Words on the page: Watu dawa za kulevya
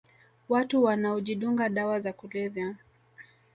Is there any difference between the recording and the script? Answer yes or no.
yes